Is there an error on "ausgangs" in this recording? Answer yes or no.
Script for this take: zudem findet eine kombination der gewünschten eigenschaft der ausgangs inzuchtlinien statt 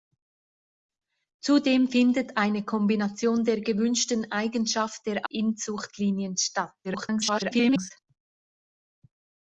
yes